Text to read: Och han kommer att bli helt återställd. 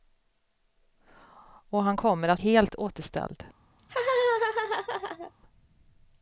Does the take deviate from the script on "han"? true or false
false